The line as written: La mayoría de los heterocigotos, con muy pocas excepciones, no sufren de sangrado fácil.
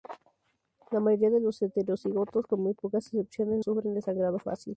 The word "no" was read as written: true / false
false